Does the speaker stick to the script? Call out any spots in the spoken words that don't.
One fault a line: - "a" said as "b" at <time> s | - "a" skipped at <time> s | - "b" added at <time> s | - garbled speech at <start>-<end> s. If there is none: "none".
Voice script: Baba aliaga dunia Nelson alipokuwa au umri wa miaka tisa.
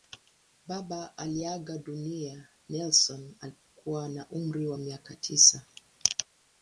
- "au" said as "na" at 4.1 s